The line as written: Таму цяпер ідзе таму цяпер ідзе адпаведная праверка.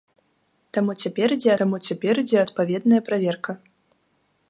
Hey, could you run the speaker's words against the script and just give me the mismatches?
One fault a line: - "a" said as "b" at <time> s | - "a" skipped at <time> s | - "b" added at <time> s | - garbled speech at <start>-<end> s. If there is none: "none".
none